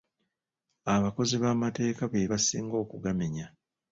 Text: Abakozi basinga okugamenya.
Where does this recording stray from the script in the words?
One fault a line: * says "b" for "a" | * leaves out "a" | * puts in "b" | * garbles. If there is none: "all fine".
* puts in "b'amateeka be"